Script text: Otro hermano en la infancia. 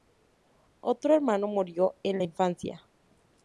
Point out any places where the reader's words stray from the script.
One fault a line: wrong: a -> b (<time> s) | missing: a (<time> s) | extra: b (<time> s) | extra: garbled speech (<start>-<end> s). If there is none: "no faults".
extra: murió (1.4 s)